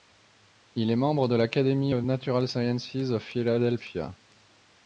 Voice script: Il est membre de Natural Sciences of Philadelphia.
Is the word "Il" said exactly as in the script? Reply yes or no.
yes